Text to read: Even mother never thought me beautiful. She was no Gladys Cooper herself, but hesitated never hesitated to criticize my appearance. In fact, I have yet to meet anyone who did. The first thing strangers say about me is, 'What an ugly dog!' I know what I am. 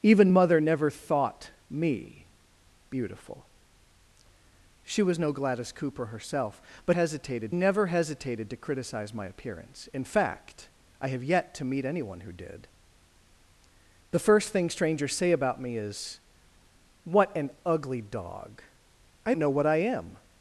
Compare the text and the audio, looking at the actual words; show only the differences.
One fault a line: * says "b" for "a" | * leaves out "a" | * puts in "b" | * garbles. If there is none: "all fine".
all fine